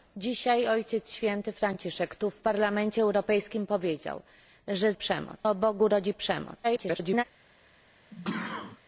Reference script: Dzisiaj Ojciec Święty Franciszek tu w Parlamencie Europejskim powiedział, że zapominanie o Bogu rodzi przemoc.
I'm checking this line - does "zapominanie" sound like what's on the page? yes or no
no